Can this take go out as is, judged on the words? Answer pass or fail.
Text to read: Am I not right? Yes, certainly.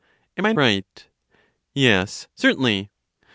fail